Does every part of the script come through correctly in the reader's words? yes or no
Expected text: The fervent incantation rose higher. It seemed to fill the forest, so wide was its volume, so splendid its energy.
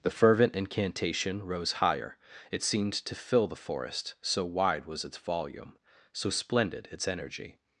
yes